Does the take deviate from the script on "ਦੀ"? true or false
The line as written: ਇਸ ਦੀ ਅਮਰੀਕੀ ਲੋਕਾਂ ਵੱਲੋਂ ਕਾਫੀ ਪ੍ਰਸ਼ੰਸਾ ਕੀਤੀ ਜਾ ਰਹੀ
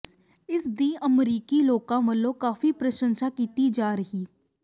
false